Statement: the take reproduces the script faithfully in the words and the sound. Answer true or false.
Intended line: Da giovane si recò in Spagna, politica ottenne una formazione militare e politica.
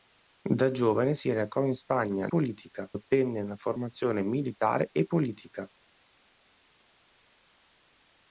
true